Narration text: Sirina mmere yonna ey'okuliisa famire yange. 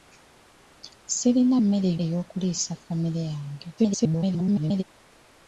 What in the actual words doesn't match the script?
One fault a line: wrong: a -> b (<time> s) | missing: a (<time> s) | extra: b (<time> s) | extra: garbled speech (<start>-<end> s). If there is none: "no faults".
missing: yonna (1.9 s)
extra: garbled speech (3.8-4.8 s)